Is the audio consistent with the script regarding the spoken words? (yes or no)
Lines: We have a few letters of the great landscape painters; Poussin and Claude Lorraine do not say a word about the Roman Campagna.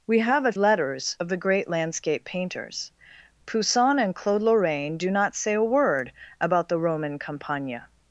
no